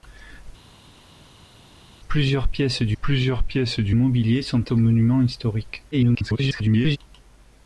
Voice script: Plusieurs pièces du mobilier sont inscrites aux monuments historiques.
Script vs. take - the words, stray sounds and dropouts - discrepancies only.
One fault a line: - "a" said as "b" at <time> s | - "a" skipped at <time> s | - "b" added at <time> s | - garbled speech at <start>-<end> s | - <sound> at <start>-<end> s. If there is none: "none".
- "plusieurs pièces du" added at 3.0 s
- "inscrites" skipped at 4.7 s
- garbled speech at 5.9-7.0 s